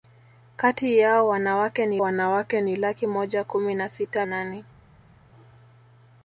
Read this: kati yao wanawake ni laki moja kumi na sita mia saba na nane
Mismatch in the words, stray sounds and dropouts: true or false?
true